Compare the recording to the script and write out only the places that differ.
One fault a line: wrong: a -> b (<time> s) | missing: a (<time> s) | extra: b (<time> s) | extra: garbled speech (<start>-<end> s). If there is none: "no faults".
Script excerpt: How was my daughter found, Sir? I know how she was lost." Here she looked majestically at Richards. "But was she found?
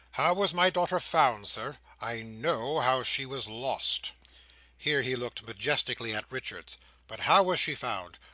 wrong: she -> he (5.0 s)
extra: how (7.2 s)